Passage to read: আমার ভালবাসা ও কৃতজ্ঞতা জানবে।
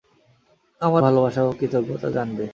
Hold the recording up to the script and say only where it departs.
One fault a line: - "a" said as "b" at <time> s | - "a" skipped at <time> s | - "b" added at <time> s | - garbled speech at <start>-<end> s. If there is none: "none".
none